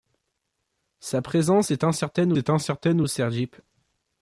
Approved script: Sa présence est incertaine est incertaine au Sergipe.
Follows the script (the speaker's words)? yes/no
yes